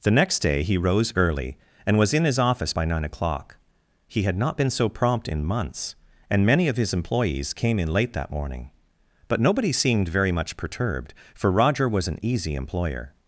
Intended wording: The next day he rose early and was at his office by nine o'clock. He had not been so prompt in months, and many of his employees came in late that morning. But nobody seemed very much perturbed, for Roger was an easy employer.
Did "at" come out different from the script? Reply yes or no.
yes